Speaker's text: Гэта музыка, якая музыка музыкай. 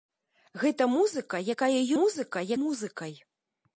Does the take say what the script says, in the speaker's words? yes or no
yes